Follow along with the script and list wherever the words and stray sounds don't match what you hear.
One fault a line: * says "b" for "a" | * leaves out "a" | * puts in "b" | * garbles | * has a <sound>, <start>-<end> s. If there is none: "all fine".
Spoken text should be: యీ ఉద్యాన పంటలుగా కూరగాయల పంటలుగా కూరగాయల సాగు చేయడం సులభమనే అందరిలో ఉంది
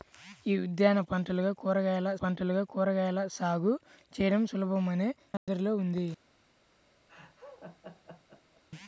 * has a dropout, 5.4-5.5 s
* has a laugh, 7.1-8.6 s